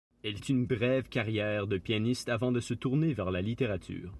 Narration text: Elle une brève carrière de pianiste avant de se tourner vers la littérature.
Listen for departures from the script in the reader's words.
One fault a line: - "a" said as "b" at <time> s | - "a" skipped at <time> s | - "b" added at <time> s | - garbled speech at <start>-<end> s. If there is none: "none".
none